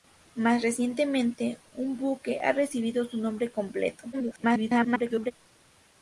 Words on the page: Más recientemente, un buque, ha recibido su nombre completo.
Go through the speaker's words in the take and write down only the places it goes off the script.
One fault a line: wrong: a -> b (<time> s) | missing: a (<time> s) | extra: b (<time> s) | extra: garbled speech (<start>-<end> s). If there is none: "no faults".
extra: garbled speech (4.1-5.3 s)